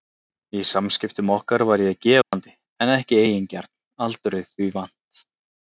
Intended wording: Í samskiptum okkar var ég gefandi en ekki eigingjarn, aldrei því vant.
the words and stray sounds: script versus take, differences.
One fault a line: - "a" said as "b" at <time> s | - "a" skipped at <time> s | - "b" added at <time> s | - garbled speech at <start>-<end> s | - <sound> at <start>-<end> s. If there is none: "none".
- dropout at 2.2-2.3 s